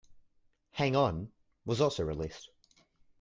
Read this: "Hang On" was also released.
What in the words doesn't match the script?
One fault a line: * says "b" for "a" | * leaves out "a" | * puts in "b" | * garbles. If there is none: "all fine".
all fine